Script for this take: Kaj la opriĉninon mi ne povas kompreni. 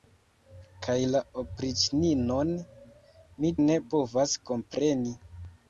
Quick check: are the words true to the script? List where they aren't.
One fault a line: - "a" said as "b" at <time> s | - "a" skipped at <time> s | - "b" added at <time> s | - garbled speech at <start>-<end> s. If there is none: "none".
none